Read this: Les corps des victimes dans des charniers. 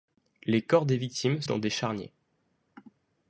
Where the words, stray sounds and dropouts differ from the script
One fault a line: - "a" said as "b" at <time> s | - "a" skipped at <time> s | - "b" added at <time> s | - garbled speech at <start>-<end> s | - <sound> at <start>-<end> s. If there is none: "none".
none